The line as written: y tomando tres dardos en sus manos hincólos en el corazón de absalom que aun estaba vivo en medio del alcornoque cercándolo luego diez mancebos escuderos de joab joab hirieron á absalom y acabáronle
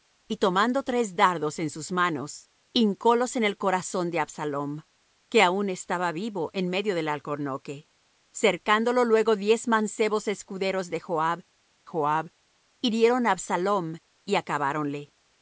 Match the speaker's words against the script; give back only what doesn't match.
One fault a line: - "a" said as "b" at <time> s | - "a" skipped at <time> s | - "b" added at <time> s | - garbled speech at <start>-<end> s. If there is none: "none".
none